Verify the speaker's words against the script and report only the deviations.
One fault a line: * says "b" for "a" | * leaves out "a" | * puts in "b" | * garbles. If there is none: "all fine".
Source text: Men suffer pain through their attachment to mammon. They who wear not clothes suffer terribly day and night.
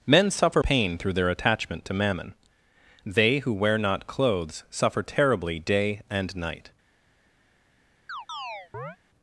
all fine